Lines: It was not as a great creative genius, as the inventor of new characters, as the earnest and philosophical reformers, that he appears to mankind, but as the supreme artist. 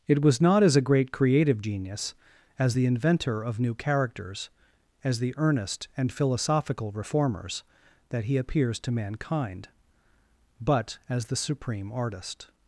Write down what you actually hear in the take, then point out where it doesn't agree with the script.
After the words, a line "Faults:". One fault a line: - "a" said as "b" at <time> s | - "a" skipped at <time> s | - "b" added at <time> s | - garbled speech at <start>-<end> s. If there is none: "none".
It was not as a great creative genius, as the inventor of new characters, as the earnest and philosophical reformers, that he appears to mankind, but as the supreme artist.
Faults:
none